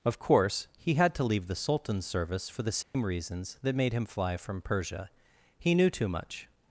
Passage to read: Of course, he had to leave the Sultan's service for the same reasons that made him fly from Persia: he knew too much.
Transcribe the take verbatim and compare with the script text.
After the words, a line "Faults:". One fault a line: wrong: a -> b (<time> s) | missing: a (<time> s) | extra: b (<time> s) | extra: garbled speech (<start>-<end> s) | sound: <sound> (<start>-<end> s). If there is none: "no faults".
Of course, he had to leave the Sultan's service for the same reasons that made him fly from Persia: he knew too much.
Faults:
sound: dropout (2.8-2.9 s)